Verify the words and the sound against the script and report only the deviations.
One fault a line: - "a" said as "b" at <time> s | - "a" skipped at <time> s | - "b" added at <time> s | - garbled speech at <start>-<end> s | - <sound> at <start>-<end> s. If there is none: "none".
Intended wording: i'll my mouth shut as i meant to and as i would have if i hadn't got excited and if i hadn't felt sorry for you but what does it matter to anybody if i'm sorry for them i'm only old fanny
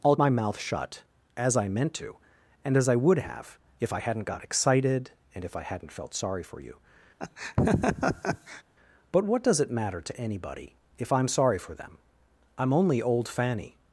- laugh at 7.2-8.6 s